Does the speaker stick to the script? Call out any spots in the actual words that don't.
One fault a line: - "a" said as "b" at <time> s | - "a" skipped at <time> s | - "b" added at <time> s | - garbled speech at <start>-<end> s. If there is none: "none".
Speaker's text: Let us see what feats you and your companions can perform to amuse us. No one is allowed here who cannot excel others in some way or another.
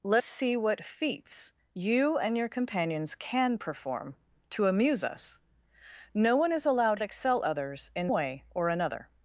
- "us" skipped at 0.2 s
- "here who cannot" skipped at 7.0 s
- "some" skipped at 8.1 s